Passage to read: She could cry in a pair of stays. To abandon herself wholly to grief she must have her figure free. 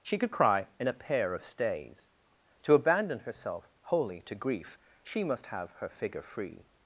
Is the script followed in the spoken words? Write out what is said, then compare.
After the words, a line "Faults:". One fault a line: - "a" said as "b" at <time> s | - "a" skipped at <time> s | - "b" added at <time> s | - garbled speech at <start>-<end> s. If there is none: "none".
She could cry in a pair of stays. To abandon herself wholly to grief she must have her figure free.
Faults:
none